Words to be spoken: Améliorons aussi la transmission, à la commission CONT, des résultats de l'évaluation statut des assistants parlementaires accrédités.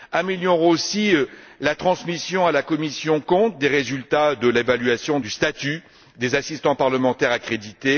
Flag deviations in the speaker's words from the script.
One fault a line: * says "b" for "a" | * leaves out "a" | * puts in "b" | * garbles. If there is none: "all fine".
all fine